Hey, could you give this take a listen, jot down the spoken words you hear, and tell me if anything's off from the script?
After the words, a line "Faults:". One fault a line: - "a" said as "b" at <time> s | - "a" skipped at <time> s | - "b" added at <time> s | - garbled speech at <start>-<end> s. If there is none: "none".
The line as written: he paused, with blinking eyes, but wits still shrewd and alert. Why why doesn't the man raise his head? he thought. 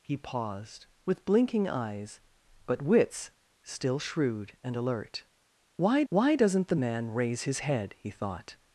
he paused, with blinking eyes, but wits still shrewd and alert. Why why doesn't the man raise his head? he thought.
Faults:
none